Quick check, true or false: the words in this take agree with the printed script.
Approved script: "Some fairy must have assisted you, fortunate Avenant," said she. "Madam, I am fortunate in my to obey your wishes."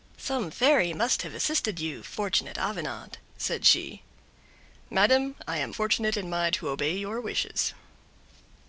true